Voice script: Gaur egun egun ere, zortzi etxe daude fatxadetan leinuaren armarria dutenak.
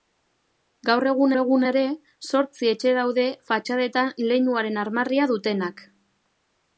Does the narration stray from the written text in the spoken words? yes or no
no